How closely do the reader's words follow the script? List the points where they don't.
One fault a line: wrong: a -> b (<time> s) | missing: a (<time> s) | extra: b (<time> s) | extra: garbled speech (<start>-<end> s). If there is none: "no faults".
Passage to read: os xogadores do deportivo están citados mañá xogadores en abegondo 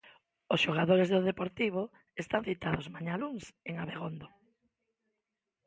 wrong: xogadores -> luns (3.2 s)